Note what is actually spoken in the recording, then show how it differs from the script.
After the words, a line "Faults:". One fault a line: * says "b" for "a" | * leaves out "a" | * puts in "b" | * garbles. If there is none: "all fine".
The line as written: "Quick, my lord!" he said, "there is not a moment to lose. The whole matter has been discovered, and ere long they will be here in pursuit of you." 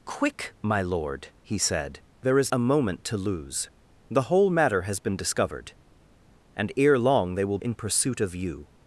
"Quick, my lord!" he said, "there is a moment to lose. The whole matter has been discovered, and ere long they will in pursuit of you."
Faults:
* leaves out "not"
* leaves out "be here"